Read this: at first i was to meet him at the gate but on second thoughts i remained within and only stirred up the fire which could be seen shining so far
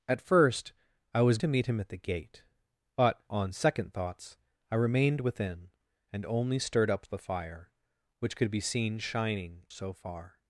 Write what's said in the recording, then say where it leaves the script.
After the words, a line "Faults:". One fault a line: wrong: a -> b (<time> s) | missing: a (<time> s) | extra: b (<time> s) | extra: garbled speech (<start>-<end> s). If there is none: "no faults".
at first i was to meet him at the gate but on second thoughts i remained within and only stirred up the fire which could be seen shining so far
Faults:
no faults